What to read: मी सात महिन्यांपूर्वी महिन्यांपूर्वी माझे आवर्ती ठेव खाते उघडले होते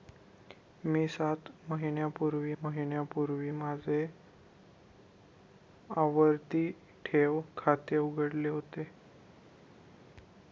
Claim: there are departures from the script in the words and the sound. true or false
false